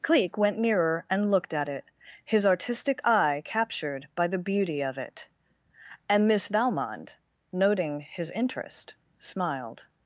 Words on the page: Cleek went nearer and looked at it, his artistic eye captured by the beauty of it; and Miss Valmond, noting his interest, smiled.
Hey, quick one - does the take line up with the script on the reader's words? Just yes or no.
yes